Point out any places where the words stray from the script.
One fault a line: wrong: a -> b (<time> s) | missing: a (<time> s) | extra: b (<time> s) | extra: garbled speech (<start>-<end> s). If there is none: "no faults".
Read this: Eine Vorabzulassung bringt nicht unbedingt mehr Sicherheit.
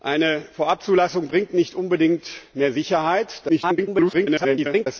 extra: garbled speech (3.5-4.9 s)